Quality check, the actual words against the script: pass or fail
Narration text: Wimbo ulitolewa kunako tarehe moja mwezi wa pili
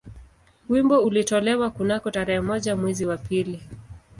pass